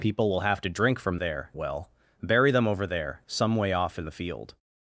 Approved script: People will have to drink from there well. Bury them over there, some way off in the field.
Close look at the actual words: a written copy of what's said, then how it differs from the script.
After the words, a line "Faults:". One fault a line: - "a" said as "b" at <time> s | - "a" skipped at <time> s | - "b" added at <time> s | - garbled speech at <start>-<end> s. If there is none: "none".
People will have to drink from there well. Bury them over there, some way off in the field.
Faults:
none